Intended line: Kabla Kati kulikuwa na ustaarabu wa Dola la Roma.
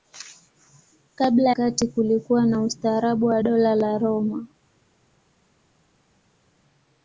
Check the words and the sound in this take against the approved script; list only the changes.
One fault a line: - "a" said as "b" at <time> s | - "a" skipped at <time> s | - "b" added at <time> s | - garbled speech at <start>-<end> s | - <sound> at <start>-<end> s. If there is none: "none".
none